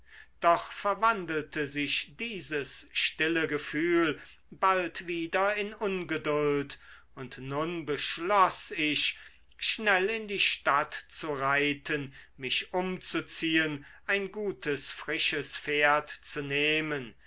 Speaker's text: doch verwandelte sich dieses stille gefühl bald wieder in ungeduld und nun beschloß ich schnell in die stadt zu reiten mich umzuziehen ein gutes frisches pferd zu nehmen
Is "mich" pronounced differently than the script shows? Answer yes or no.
no